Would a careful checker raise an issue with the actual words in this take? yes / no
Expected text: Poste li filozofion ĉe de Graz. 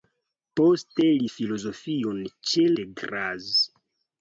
no